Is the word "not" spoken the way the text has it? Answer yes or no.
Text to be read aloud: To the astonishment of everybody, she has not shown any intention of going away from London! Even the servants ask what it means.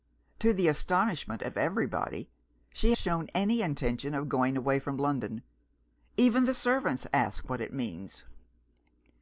no